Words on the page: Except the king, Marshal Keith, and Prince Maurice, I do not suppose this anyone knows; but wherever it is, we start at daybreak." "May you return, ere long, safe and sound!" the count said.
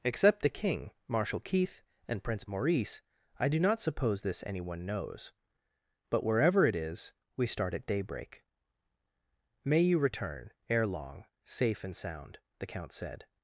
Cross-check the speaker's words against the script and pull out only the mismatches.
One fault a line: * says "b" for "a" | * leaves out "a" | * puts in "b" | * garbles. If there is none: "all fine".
all fine